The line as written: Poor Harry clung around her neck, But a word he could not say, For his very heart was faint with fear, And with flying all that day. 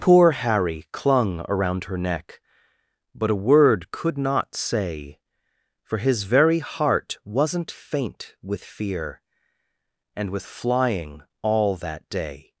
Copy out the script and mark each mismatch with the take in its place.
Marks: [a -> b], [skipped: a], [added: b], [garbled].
Poor Harry clung around her neck, But a word [skipped: he] could not say, For his very heart [was -> wasn't] faint with fear, And with flying all that day.